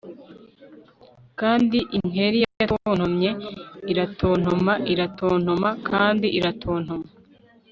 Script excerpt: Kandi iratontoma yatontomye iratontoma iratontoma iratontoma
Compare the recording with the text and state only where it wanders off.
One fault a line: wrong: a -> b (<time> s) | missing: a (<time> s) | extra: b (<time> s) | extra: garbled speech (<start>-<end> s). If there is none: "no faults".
wrong: iratontoma -> inkeri (2.0 s)
extra: kandi (5.9 s)